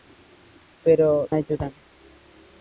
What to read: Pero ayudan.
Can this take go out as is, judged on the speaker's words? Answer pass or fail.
pass